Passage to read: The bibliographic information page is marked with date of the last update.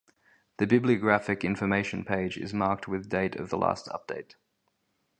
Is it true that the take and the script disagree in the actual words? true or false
false